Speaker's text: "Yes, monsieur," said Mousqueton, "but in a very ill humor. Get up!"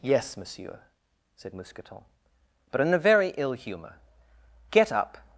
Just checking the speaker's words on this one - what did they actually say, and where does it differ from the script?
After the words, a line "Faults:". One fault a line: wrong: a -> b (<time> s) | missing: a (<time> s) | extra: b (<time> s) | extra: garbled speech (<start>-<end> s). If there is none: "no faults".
"Yes, monsieur," said Mousqueton, "but in a very ill humor. Get up!"
Faults:
no faults